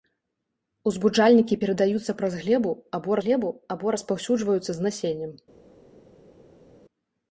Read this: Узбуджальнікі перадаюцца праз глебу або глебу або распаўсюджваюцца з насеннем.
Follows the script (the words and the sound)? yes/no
yes